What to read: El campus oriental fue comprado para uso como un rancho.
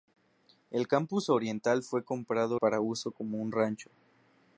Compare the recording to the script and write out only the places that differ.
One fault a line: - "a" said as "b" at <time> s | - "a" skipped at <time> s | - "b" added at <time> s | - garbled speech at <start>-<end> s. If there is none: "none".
none